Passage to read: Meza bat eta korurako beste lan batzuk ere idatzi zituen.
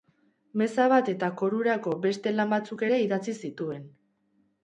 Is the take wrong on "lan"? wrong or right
right